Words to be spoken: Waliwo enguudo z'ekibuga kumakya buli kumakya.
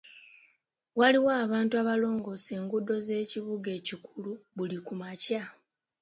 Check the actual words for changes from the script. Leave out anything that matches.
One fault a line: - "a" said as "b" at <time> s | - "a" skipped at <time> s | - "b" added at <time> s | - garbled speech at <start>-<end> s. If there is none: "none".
- "abantu abalongoosa" added at 1.4 s
- "kumakya" said as "ekikulu" at 3.8 s